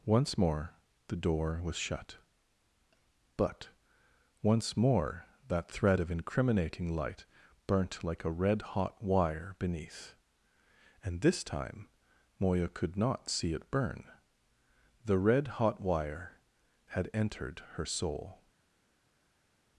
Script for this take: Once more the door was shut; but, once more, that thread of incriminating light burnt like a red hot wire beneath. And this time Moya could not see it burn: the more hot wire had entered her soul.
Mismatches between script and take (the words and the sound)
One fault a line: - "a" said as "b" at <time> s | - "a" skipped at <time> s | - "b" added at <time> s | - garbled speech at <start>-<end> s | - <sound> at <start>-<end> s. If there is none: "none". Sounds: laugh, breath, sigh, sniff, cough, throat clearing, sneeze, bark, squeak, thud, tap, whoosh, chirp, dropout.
- "more" said as "red" at 15.2 s